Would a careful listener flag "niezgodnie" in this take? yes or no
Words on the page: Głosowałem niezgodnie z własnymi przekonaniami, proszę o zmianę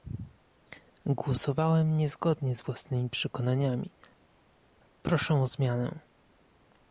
no